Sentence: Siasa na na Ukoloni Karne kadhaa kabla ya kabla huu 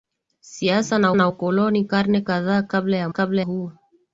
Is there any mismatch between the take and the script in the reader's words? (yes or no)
no